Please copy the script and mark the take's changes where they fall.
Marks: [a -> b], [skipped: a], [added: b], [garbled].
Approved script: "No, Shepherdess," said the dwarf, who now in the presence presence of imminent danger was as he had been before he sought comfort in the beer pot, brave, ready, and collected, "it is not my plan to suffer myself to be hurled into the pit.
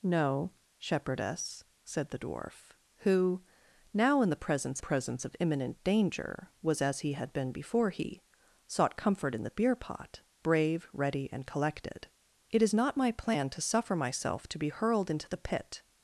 "No, Shepherdess," said the dwarf, who now in the presence presence of imminent danger was as he had been before he sought comfort in the beer pot, brave, ready, and collected, "it is not my plan to suffer myself to be hurled into the pit.